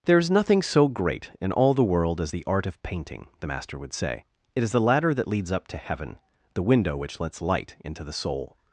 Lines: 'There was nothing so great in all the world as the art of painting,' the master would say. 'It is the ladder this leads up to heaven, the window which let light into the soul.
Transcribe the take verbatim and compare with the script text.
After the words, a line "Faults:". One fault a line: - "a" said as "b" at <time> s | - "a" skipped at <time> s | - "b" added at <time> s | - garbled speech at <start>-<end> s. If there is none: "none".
'There is nothing so great in all the world as the art of painting,' the master would say. 'It is the ladder that leads up to heaven, the window which lets light into the soul.
Faults:
- "was" said as "is" at 0.2 s
- "this" said as "that" at 5.1 s
- "let" said as "lets" at 7.2 s